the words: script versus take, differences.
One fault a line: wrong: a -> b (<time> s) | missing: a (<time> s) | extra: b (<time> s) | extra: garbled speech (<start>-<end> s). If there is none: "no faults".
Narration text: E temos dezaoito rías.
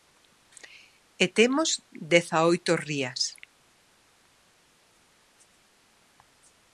no faults